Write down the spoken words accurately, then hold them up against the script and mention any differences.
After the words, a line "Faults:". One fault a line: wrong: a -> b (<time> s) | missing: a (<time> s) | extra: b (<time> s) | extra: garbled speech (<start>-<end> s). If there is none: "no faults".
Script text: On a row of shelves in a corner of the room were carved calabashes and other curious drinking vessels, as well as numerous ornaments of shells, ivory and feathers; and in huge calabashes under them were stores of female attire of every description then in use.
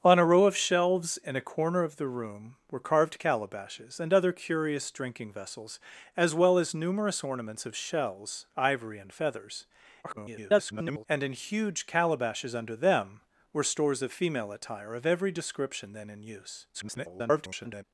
On a row of shelves in a corner of the room were carved calabashes and other curious drinking vessels, as well as numerous ornaments of shells, ivory and feathers; [garbled] and in huge calabashes under them were stores of female attire of every description then in use. [garbled]
Faults:
extra: garbled speech (10.0-11.1 s)
extra: garbled speech (16.7-17.8 s)